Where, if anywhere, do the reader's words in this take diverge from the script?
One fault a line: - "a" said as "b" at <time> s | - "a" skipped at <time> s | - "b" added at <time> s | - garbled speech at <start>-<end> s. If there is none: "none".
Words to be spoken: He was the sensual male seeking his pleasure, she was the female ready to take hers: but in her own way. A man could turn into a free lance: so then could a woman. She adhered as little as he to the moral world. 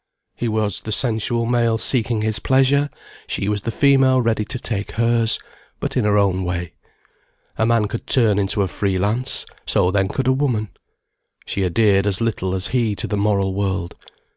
none